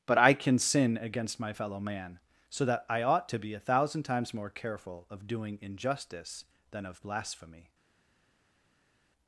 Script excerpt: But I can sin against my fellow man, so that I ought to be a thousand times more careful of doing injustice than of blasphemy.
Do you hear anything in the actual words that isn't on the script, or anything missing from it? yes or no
no